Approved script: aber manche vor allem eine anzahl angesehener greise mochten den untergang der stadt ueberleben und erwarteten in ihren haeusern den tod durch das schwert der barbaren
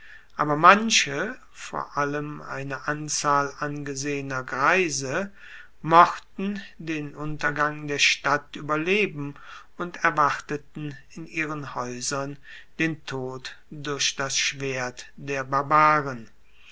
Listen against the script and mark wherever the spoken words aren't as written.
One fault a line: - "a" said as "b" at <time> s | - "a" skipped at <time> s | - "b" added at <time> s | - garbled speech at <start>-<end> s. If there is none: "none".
none